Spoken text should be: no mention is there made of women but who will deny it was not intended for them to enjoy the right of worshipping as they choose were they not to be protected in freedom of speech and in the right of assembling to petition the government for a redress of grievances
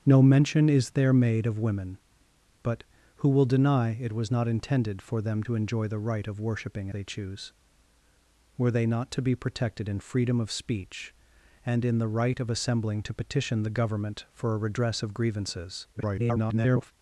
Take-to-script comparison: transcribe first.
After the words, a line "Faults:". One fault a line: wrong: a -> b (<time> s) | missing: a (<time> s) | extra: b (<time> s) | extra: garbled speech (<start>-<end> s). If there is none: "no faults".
no mention is there made of women but who will deny it was not intended for them to enjoy the right of worshipping they choose were they not to be protected in freedom of speech and in the right of assembling to petition the government for a redress of grievances [garbled]
Faults:
missing: as (6.9 s)
extra: garbled speech (15.9-16.9 s)